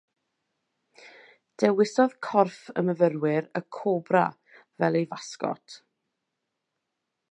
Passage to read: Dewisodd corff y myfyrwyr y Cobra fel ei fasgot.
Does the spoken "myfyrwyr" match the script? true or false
true